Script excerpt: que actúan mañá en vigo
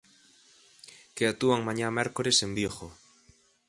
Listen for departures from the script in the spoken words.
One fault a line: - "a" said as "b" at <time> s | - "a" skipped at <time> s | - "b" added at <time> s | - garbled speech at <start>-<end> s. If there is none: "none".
- "mércores" added at 2.0 s